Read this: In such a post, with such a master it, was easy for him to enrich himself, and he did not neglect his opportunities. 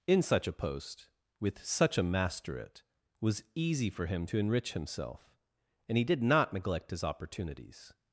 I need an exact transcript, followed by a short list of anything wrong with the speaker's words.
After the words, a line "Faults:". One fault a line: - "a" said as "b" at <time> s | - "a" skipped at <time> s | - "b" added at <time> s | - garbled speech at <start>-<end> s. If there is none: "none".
In such a post, with such a master it, was easy for him to enrich himself, and he did not neglect his opportunities.
Faults:
none